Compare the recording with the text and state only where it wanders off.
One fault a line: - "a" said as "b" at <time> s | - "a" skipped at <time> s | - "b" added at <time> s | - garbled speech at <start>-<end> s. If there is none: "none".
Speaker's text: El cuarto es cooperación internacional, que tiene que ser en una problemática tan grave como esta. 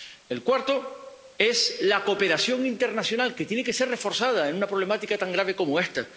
- "la" added at 1.8 s
- "reforzada" added at 3.9 s